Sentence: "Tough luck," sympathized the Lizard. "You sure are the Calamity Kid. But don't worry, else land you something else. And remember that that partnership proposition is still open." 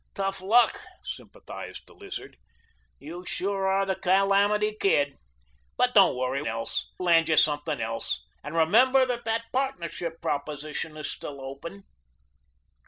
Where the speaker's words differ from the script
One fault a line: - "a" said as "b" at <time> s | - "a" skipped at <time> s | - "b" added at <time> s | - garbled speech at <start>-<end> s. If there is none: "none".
none